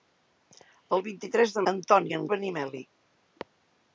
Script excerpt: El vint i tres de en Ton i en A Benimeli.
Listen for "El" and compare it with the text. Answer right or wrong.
right